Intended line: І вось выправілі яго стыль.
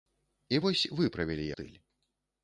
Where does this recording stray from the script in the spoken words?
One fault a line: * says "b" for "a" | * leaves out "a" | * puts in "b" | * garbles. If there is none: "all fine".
* leaves out "яго"